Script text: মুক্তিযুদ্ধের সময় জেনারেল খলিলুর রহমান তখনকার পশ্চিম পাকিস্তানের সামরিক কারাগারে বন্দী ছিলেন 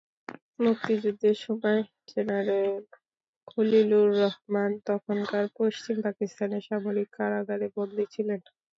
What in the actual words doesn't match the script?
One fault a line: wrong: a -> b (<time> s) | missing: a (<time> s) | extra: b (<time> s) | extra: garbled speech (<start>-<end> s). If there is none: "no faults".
no faults